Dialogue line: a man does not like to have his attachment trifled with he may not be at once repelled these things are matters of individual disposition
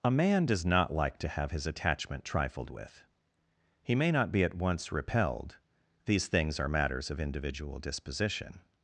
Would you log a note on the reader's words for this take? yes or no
no